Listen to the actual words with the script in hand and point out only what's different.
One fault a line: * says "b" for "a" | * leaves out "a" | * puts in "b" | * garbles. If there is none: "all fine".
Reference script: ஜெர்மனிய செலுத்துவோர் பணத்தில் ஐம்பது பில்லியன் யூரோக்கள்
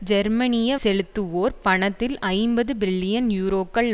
all fine